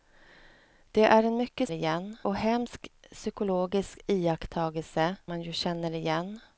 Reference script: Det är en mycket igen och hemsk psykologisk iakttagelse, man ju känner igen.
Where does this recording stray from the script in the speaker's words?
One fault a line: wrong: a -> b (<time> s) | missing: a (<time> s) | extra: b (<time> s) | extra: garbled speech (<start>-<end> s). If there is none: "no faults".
no faults